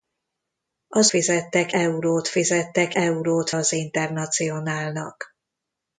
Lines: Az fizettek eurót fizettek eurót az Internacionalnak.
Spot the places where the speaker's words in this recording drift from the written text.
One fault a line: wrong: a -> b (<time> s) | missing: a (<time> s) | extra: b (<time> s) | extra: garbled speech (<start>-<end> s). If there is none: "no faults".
no faults